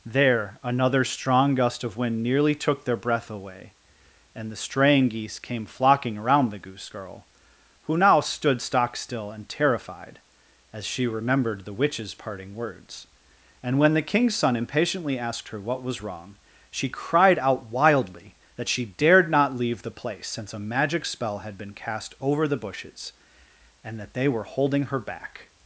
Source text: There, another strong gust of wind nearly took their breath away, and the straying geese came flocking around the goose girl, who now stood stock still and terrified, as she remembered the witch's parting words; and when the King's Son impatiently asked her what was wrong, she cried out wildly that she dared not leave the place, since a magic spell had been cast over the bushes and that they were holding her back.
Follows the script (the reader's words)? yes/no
yes